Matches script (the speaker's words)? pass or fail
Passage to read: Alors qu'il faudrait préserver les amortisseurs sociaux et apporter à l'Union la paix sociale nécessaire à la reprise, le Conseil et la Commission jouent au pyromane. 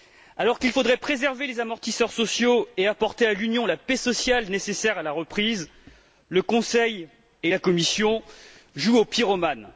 pass